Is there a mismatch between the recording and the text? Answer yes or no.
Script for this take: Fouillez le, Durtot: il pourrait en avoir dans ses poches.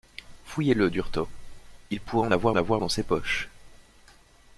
yes